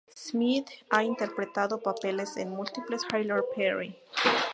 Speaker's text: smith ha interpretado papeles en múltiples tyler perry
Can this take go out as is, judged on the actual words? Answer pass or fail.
pass